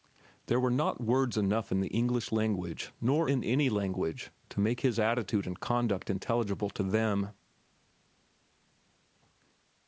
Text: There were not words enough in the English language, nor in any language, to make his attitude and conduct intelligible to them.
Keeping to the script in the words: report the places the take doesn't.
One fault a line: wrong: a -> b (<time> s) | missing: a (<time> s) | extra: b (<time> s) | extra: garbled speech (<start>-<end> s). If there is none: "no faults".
no faults